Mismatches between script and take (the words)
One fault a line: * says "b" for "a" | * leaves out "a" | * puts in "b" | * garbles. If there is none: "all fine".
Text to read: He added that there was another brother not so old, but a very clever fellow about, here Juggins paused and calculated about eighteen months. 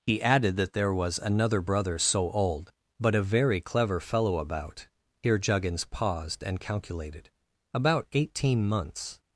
* leaves out "not"